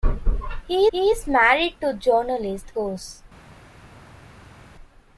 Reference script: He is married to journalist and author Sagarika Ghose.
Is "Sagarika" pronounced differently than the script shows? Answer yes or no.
yes